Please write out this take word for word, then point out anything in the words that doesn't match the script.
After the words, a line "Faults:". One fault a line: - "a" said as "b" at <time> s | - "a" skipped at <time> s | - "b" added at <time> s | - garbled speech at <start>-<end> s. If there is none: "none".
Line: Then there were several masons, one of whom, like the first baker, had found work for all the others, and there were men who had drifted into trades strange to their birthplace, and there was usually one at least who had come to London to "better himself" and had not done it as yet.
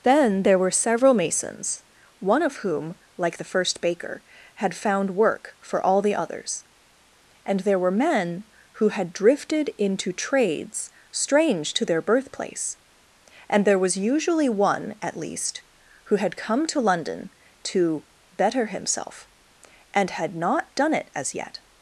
Then there were several masons, one of whom, like the first baker, had found work for all the others, and there were men who had drifted into trades strange to their birthplace, and there was usually one at least who had come to London to "better himself" and had not done it as yet.
Faults:
none